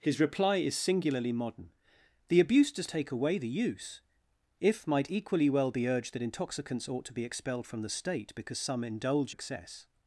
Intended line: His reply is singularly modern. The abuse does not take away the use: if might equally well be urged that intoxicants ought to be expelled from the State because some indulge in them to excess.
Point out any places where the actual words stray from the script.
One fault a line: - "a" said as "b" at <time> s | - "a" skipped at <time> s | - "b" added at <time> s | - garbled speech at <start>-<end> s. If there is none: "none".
- "not" skipped at 2.9 s
- "in them to" skipped at 9.3 s